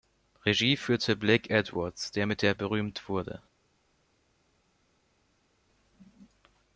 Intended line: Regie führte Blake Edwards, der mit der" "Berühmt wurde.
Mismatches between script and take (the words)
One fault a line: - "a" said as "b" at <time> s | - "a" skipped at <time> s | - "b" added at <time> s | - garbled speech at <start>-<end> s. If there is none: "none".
none